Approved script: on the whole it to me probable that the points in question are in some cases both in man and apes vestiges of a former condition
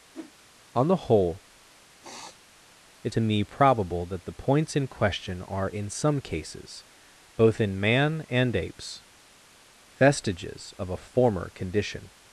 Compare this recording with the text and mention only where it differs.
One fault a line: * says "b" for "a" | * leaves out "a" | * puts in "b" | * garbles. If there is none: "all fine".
all fine